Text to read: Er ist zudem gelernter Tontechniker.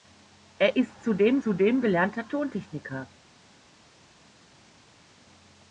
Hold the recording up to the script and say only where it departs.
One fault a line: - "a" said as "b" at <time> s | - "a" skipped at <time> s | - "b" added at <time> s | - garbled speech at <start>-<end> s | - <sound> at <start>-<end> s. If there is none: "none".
- "zudem" added at 1.4 s